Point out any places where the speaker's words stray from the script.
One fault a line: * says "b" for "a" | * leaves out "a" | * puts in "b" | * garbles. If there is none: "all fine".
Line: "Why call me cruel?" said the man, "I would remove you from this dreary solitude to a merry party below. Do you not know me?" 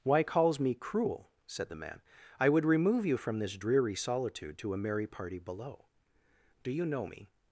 * says "calls" for "call"
* leaves out "not"